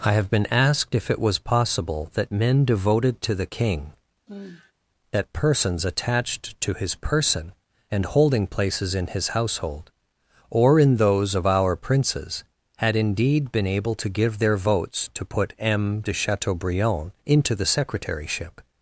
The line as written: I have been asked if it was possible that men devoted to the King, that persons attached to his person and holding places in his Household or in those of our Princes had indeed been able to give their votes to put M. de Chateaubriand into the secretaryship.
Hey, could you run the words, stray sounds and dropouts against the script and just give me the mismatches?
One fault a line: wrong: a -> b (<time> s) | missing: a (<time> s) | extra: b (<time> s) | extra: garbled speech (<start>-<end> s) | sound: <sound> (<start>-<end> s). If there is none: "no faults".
sound: sigh (4.3-4.7 s)